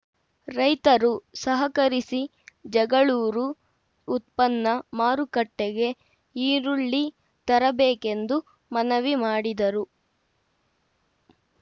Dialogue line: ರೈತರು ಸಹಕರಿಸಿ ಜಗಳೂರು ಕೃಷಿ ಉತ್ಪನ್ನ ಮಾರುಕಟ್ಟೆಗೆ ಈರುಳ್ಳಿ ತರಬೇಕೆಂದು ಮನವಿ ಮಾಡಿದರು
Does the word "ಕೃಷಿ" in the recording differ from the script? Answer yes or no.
yes